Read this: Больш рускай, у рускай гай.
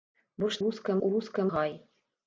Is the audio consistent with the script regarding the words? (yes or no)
yes